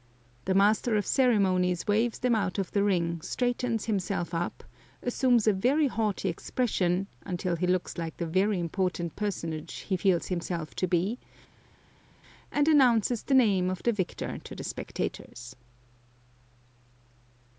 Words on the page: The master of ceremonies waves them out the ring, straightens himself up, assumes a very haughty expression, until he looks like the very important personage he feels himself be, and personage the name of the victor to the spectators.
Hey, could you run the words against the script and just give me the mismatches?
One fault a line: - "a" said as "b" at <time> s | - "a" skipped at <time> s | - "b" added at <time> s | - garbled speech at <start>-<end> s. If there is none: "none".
- "of" added at 2.6 s
- "to" added at 10.7 s
- "personage" said as "announces" at 12.7 s